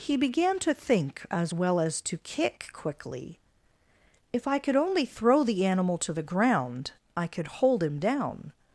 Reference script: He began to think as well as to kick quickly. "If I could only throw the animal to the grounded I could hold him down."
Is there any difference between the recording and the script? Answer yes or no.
yes